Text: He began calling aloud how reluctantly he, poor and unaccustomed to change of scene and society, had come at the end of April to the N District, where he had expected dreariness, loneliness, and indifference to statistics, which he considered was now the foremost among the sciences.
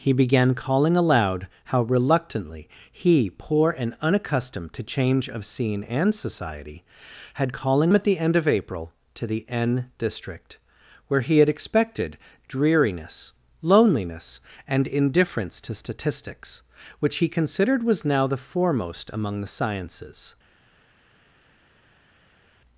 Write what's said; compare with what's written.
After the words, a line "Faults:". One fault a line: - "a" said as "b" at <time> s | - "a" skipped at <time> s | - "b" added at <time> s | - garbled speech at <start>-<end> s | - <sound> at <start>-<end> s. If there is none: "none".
He began calling aloud how reluctantly he, poor and unaccustomed to change of scene and society, had calling at the end of April to the N District, where he had expected dreariness, loneliness, and indifference to statistics, which he considered was now the foremost among the sciences.
Faults:
- "come" said as "calling" at 7.5 s